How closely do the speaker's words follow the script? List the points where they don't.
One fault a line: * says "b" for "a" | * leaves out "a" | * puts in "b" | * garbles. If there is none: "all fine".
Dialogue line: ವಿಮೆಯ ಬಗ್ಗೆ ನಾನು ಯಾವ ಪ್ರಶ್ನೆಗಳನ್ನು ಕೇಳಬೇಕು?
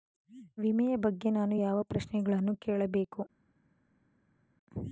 all fine